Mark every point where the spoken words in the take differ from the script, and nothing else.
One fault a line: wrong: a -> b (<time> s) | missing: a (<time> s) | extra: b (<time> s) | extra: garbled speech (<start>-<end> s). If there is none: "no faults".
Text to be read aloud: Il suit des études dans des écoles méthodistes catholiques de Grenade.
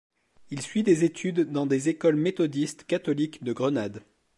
no faults